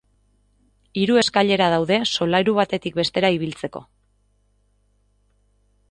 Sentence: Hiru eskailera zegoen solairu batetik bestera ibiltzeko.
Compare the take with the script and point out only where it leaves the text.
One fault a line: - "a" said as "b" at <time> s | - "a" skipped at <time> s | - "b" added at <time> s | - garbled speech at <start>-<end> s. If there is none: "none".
- "zegoen" said as "daude" at 1.7 s